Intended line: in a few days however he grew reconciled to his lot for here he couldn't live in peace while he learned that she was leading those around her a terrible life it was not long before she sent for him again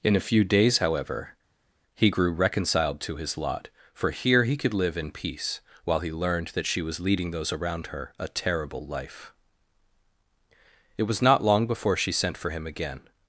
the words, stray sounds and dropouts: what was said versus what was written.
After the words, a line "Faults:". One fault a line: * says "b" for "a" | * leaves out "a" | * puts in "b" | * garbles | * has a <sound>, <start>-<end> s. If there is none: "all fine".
in a few days however he grew reconciled to his lot for here he could live in peace while he learned that she was leading those around her a terrible life it was not long before she sent for him again
Faults:
* says "could" for "couldn't"